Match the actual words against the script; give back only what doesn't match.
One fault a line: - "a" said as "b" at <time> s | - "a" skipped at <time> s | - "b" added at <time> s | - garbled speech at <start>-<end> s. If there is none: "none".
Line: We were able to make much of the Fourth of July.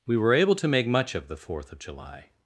none